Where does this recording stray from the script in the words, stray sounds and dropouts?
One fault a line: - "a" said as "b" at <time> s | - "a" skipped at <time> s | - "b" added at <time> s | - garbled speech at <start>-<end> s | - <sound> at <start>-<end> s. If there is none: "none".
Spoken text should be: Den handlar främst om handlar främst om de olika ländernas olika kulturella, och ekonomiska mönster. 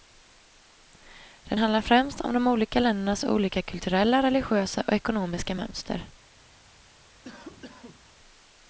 - "handlar främst om" skipped at 2.3 s
- "religiösa" added at 4.2 s
- cough at 7.2-8.0 s